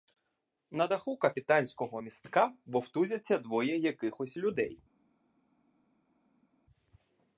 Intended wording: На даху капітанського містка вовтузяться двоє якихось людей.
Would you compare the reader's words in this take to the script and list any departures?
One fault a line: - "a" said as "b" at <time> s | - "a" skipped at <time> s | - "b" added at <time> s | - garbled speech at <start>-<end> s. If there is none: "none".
none